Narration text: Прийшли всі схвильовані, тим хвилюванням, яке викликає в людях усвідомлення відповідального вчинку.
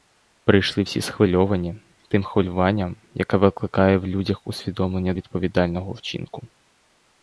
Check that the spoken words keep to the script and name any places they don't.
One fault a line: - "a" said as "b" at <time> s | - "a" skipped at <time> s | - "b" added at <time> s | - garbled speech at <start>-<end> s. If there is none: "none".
none